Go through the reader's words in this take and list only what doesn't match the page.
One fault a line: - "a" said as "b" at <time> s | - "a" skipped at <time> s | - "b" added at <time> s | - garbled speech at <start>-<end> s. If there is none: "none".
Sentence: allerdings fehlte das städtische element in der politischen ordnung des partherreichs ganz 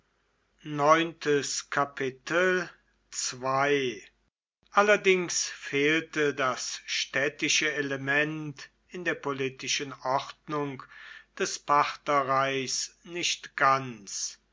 - "nicht" added at 13.0 s